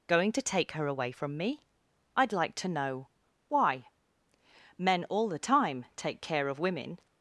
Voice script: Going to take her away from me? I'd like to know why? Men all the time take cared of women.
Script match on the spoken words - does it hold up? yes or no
no